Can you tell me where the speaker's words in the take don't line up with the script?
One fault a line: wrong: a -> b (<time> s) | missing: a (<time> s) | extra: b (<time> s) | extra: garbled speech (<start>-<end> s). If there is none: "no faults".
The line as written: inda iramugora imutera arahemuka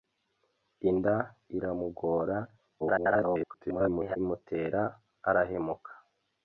extra: garbled speech (2.8-4.2 s)